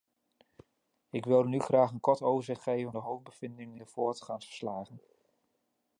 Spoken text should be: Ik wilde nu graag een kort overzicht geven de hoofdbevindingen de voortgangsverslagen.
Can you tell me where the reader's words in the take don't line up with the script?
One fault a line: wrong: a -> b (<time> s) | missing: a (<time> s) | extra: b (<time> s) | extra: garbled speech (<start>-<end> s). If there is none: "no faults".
no faults